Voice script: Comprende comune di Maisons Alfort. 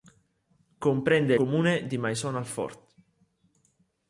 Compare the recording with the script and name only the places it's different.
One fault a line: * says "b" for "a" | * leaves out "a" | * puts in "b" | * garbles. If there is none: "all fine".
all fine